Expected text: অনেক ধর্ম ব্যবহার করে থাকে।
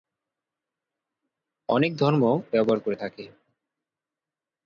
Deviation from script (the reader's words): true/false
false